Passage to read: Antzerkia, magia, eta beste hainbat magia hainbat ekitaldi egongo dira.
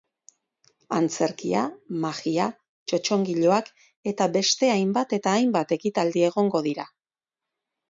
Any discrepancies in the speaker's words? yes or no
yes